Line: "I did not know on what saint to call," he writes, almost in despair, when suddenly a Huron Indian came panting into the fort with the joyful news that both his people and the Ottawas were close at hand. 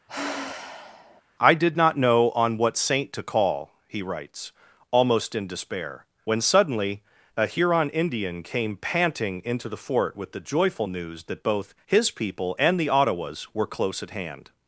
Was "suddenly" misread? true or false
false